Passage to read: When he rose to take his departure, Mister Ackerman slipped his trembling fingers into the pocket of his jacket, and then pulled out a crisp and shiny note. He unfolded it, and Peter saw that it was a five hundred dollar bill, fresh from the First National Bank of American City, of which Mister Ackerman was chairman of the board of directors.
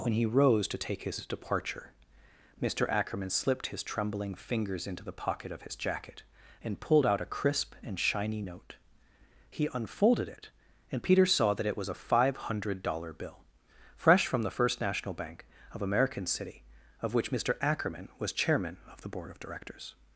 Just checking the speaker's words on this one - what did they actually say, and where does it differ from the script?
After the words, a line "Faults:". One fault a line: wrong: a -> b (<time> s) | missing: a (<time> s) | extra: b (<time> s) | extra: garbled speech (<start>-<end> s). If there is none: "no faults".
When he rose to take his departure, Mister Ackerman slipped his trembling fingers into the pocket of his jacket, and pulled out a crisp and shiny note. He unfolded it, and Peter saw that it was a five hundred dollar bill, fresh from the First National Bank of American City, of which Mister Ackerman was chairman of the board of directors.
Faults:
missing: then (6.8 s)